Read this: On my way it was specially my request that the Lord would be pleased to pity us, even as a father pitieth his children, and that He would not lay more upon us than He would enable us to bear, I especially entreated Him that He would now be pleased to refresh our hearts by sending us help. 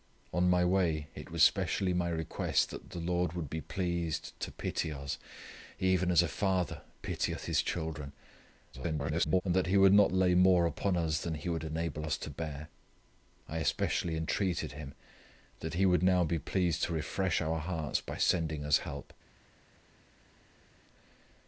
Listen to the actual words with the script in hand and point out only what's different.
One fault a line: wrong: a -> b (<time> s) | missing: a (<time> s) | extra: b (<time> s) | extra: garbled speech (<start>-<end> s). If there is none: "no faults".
extra: garbled speech (8.7-9.4 s)